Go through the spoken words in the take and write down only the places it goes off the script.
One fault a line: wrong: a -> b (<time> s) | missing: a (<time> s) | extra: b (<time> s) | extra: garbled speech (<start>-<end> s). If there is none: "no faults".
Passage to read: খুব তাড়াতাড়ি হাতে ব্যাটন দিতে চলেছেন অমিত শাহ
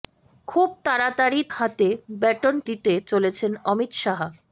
no faults